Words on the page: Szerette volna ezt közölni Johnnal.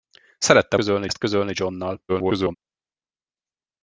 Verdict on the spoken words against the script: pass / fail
fail